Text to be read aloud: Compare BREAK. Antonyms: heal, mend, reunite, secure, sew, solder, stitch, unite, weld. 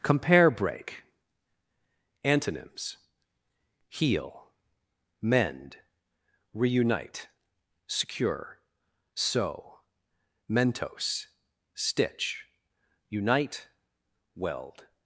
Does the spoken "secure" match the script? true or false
true